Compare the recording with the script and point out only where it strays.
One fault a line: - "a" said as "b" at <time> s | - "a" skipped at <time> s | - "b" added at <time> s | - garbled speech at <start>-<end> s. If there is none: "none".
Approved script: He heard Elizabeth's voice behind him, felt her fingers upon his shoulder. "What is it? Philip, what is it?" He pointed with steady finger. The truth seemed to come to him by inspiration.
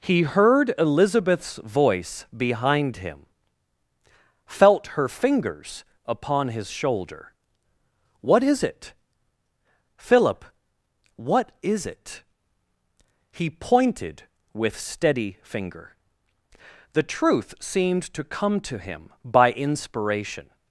none